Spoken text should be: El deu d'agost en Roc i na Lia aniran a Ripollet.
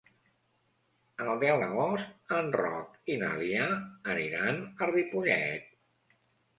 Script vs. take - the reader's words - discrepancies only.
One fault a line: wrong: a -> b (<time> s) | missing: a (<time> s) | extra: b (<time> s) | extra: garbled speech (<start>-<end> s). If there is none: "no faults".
no faults